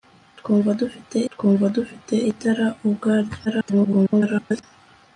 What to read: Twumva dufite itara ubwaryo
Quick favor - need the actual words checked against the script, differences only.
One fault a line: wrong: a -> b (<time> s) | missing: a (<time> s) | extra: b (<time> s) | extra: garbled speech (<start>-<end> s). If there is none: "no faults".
extra: twumva dufite (1.3 s)
extra: garbled speech (3.4-4.6 s)